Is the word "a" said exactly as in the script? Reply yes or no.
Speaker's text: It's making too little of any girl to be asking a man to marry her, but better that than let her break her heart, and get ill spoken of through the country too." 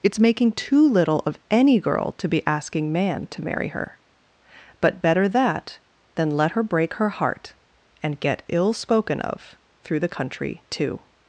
no